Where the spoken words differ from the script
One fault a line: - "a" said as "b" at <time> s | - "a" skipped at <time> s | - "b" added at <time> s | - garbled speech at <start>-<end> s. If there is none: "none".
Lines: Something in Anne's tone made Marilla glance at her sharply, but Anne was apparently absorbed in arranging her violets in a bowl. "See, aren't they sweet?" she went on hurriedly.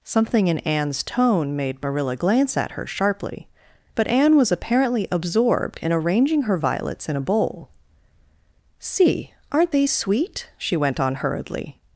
none